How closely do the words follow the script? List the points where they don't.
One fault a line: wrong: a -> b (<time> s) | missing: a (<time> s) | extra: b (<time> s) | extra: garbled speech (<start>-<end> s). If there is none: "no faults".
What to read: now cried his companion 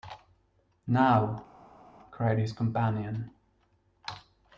no faults